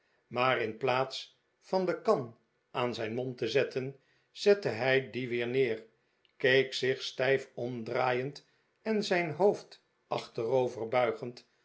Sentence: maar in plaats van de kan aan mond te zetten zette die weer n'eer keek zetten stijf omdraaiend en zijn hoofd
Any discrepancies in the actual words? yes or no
yes